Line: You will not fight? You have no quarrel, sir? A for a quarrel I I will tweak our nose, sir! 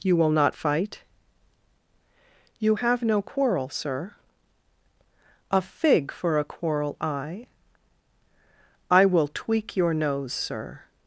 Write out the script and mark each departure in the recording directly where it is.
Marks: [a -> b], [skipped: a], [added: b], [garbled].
You will not fight? You have no quarrel, sir? A [added: fig] for a quarrel I I will tweak [our -> your] nose, sir!